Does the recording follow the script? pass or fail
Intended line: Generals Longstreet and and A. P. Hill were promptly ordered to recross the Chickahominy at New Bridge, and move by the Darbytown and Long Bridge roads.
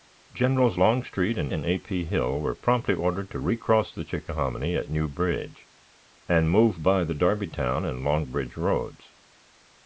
pass